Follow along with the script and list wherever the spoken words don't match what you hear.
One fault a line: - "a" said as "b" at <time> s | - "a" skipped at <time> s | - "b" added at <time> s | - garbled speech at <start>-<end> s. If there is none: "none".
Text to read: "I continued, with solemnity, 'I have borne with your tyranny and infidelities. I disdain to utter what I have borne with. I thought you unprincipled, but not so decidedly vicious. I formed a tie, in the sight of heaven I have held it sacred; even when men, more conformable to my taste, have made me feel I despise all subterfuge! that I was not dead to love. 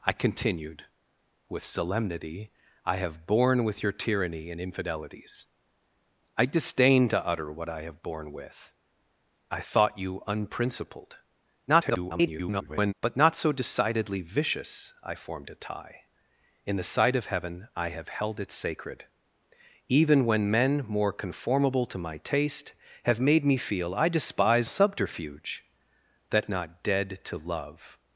- garbled speech at 11.7-12.9 s
- "all" skipped at 24.7 s
- "I was" skipped at 26.4 s